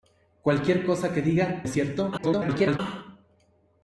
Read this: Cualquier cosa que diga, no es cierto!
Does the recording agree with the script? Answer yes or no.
no